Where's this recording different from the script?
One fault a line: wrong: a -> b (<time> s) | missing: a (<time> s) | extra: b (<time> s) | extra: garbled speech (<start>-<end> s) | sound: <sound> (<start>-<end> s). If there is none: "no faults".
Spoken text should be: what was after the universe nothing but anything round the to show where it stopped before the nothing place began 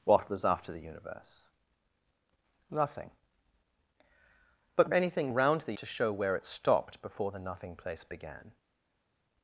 no faults